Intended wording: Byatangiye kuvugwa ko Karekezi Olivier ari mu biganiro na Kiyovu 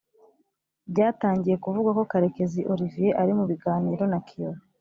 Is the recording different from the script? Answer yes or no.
no